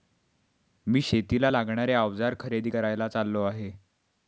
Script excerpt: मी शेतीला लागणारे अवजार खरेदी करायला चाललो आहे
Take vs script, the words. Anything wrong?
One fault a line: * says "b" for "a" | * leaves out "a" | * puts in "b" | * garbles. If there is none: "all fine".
all fine